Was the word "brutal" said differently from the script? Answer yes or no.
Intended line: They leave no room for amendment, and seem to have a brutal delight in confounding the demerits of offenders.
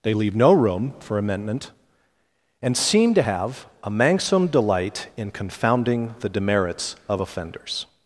yes